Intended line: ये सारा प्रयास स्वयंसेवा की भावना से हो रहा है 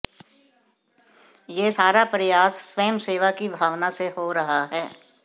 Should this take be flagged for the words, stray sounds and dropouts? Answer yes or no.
no